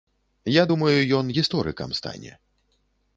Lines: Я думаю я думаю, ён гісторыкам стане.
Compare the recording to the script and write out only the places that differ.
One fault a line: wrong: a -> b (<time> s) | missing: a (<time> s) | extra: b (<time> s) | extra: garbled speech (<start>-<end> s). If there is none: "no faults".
missing: я думаю (1.0 s)